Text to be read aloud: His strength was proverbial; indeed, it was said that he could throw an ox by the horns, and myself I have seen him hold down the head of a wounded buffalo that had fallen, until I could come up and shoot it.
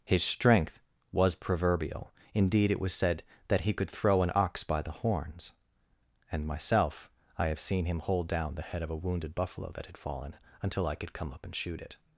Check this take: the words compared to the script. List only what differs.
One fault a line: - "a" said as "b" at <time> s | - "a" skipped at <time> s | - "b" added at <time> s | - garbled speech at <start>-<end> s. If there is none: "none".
none